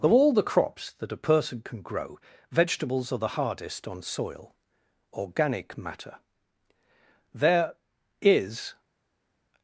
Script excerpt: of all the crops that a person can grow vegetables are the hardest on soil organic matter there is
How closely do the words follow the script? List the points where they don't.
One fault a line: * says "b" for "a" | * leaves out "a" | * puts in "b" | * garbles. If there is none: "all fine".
all fine